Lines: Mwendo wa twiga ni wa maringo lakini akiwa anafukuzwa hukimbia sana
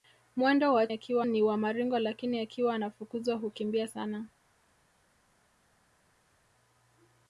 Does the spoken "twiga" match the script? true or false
false